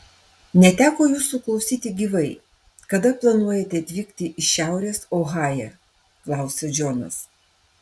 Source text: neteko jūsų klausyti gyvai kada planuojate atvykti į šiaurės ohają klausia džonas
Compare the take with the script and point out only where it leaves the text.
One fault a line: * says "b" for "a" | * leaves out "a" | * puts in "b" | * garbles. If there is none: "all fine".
all fine